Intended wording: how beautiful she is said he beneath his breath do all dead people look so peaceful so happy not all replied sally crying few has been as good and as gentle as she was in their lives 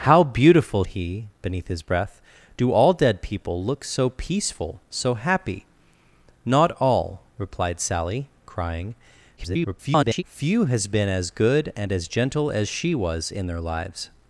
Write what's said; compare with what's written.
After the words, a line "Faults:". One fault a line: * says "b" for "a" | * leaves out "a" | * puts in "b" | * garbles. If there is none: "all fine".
how beautiful he beneath his breath do all dead people look so peaceful so happy not all replied sally crying [garbled] few has been as good and as gentle as she was in their lives
Faults:
* leaves out "she is said"
* garbles